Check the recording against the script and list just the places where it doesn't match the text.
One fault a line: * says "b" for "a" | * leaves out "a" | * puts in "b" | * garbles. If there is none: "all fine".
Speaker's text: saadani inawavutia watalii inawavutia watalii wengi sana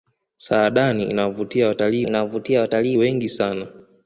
all fine